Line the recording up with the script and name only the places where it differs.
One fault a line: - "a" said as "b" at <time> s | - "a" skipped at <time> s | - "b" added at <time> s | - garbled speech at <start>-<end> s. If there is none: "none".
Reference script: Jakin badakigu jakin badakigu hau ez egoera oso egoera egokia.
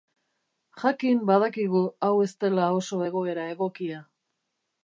- "jakin badakigu" skipped at 1.8 s
- "egoera" said as "dela" at 2.5 s